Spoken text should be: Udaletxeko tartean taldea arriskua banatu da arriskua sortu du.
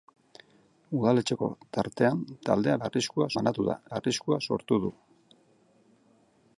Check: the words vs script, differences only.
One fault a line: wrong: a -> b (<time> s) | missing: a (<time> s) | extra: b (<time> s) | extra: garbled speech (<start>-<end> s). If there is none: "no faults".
no faults